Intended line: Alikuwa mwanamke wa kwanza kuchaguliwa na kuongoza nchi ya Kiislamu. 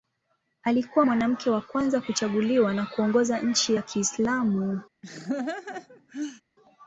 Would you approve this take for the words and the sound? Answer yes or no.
no